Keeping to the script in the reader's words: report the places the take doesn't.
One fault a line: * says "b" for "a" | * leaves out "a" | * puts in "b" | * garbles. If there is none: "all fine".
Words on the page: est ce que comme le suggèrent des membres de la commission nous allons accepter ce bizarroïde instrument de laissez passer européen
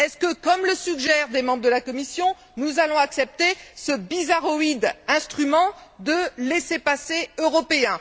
all fine